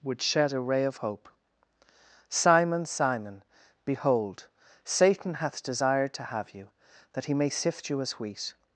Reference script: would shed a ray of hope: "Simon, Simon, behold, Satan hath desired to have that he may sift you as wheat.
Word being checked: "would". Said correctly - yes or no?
yes